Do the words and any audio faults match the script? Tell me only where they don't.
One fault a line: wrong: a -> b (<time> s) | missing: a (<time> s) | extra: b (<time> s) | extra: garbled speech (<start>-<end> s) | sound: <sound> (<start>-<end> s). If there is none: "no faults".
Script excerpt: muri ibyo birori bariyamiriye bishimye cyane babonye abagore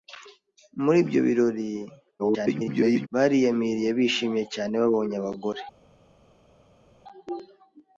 extra: garbled speech (2.2-3.1 s)